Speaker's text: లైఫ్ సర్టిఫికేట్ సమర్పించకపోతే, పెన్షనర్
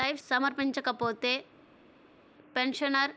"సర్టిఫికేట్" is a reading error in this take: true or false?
true